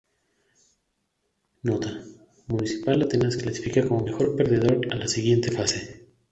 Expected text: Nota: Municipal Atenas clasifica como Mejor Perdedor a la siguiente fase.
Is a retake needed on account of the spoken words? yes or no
no